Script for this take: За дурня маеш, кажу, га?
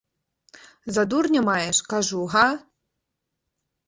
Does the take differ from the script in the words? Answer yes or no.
no